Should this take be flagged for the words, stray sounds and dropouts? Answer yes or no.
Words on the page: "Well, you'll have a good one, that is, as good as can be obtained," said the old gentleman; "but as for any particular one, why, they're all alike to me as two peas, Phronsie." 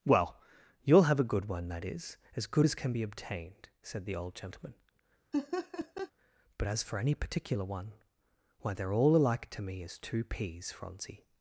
yes